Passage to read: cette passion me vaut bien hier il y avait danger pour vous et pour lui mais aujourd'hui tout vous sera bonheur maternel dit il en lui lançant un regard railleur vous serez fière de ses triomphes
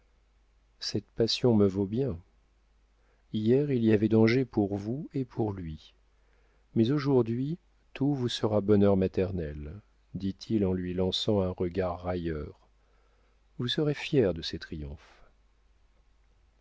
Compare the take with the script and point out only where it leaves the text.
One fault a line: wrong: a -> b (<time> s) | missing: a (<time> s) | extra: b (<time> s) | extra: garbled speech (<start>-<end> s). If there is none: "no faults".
no faults